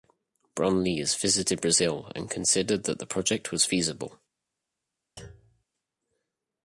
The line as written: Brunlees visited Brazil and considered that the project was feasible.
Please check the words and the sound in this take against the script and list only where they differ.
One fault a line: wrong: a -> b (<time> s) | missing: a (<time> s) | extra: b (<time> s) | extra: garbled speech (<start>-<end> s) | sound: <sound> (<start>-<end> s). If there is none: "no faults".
sound: thud (5.2-5.6 s)